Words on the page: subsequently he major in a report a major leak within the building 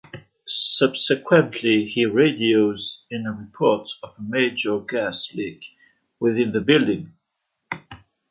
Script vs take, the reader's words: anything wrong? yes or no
yes